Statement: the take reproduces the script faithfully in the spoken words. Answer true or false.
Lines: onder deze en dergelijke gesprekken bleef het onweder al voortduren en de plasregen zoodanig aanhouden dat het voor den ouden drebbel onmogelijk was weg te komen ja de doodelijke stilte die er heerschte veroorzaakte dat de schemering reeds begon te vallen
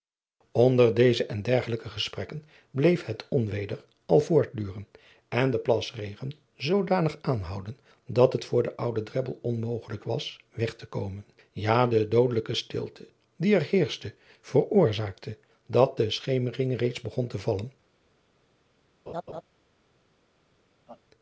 true